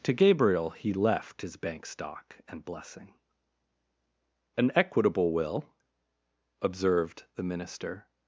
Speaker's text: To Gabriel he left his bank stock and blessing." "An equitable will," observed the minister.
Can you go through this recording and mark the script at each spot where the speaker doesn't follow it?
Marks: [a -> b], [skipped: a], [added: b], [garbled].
To Gabriel he left his bank stock and blessing." "An equitable will," observed the minister.